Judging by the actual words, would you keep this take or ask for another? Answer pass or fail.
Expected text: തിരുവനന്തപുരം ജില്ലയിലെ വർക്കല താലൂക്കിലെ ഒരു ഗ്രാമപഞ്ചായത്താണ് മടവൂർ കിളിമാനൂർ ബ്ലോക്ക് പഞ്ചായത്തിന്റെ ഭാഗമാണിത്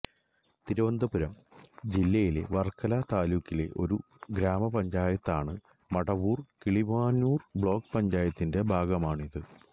pass